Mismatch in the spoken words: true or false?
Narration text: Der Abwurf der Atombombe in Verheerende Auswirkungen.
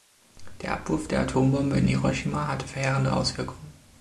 true